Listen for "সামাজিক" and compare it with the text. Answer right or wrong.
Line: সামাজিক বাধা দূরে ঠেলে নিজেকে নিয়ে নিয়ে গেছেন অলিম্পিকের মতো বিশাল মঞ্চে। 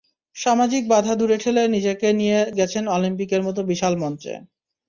right